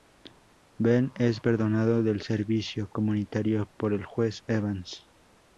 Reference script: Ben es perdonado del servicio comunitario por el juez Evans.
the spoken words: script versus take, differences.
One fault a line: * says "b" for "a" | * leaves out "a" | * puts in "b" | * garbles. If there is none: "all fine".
all fine